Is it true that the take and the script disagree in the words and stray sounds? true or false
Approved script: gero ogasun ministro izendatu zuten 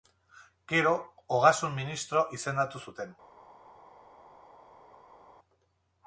false